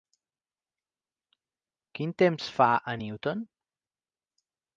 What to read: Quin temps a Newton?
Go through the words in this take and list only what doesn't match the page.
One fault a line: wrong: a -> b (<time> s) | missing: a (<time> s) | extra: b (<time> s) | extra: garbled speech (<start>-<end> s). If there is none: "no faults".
extra: fa (2.6 s)